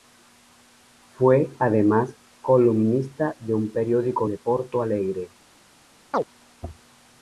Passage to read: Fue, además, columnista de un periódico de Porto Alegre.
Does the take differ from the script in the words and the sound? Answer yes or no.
yes